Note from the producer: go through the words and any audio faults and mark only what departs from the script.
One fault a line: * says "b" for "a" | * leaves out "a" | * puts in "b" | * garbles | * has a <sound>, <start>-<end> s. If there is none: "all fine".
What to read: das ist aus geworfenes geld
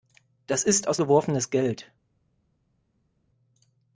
all fine